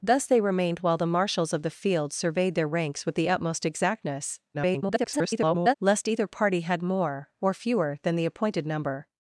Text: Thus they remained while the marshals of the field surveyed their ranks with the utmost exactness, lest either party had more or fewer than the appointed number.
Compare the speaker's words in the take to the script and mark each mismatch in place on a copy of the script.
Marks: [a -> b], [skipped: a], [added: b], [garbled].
Thus they remained while the marshals of the field surveyed their ranks with the utmost exactness, [garbled] lest either party had more or fewer than the appointed number.